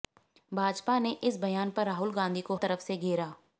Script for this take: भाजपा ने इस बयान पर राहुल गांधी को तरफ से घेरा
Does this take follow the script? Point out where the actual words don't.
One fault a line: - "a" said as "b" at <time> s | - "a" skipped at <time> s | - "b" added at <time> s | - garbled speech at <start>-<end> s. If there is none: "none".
none